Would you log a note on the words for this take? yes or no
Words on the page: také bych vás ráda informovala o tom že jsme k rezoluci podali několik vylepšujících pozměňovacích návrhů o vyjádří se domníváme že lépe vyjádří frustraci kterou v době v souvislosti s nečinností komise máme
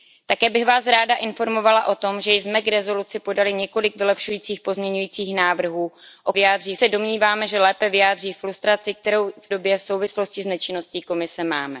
no